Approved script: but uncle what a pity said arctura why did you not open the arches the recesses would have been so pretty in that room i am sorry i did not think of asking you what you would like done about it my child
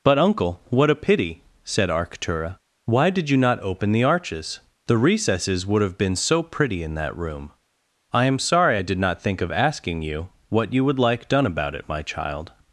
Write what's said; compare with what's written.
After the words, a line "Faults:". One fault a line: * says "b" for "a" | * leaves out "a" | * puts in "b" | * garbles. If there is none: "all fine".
but uncle what a pity said arctura why did you not open the arches the recesses would have been so pretty in that room i am sorry i did not think of asking you what you would like done about it my child
Faults:
all fine